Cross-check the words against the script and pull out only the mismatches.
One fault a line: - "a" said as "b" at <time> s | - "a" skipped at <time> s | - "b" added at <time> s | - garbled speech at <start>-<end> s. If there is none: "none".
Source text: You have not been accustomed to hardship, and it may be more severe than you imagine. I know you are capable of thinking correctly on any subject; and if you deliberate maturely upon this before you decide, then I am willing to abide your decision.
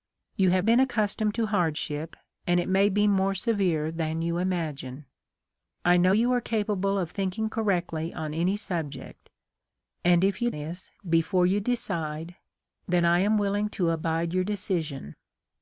- "not" skipped at 0.7 s
- "deliberate maturely upon" skipped at 10.5 s